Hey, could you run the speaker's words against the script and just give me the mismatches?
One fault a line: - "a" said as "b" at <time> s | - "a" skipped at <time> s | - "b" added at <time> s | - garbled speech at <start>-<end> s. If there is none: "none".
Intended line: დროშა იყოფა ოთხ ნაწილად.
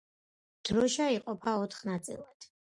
none